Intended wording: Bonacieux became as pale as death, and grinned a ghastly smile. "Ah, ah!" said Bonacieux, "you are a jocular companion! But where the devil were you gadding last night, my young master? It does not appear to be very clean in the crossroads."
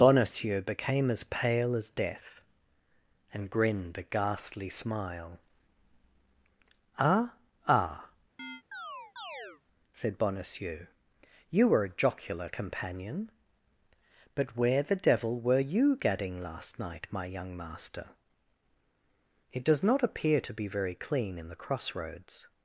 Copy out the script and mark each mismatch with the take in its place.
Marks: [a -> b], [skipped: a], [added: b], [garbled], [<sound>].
Bonacieux became as pale as death, and grinned a ghastly smile. "Ah, ah!" [chirp] said Bonacieux, "you [are -> were] a jocular companion! But where the devil were you gadding last night, my young master? It does not appear to be very clean in the crossroads."